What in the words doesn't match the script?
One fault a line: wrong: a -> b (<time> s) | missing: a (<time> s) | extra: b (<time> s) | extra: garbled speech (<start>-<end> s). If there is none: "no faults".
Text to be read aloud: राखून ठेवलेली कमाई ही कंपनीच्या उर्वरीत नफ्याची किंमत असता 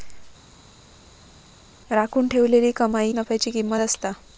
missing: ही कंपनीच्या उर्वरीत (3.1 s)